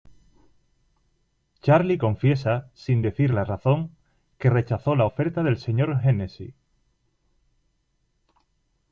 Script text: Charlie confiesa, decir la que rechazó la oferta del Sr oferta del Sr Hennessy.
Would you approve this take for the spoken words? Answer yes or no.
no